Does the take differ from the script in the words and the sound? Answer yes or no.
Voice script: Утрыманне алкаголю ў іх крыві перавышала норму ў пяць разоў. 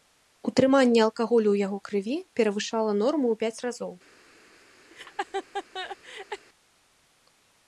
yes